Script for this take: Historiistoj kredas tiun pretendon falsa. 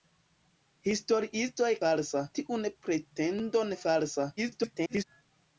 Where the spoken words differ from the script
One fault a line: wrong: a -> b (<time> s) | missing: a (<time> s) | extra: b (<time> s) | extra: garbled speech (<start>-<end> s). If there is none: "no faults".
wrong: kredas -> falsa (1.8 s)
extra: garbled speech (4.4-5.0 s)